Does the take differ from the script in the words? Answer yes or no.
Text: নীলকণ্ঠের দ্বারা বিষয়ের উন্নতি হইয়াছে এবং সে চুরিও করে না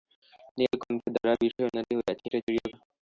yes